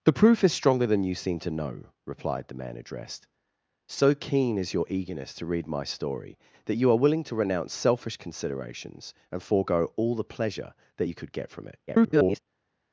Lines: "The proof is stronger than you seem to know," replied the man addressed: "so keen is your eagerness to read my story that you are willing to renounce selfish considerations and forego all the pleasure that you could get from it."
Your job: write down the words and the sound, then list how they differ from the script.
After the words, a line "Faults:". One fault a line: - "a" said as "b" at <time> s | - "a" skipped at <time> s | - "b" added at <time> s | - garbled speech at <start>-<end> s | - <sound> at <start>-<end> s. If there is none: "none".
"The proof is stronger than you seem to know," replied the man addressed: "so keen is your eagerness to read my story that you are willing to renounce selfish considerations and forego all the pleasure that you could get from it." [garbled]
Faults:
- garbled speech at 11.9-12.4 s